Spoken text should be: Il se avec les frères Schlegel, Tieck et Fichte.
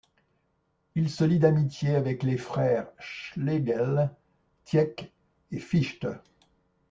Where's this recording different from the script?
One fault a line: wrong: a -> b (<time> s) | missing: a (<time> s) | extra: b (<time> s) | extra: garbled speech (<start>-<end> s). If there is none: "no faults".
extra: lie d'amitié (1.2 s)